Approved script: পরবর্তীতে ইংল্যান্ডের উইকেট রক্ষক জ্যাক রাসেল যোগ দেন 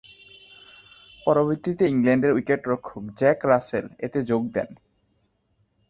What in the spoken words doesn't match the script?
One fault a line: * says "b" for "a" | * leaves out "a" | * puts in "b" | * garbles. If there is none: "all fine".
* puts in "এতে"